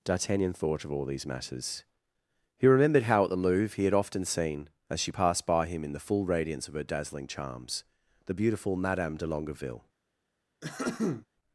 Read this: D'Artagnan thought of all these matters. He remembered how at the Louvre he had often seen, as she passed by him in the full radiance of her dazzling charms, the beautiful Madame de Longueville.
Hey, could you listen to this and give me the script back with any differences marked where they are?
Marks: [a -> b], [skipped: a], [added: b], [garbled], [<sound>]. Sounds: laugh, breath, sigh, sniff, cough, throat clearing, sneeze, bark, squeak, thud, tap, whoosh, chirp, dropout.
D'Artagnan thought of all these matters. He remembered how at the Louvre he had often seen, as she passed by him in the full radiance of her dazzling charms, the beautiful Madame de Longueville. [throat clearing]